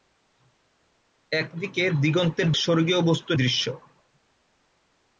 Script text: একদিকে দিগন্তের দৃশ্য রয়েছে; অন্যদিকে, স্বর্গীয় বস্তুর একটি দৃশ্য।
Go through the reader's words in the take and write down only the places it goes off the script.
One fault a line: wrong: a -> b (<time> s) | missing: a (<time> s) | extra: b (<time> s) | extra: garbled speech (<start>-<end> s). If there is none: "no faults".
missing: দৃশ্য রয়েছে অন্যদিকে (2.5 s)
missing: একটি (3.4 s)